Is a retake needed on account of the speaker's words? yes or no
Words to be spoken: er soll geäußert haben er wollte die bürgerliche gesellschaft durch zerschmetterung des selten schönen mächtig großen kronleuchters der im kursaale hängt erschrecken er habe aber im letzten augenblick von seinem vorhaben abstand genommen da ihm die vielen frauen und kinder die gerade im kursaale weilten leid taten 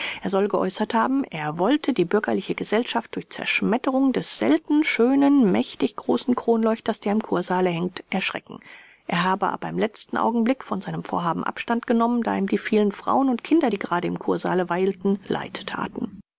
no